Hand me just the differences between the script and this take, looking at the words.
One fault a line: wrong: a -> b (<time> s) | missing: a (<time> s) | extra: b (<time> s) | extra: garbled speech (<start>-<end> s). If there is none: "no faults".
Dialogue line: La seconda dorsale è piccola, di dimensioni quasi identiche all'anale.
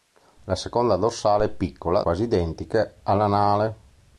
missing: di dimensioni (2.0 s)